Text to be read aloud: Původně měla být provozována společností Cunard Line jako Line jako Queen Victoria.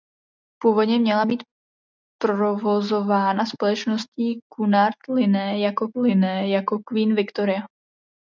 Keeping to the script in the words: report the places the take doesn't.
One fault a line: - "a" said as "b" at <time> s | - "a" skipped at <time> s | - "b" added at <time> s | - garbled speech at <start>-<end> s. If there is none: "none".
none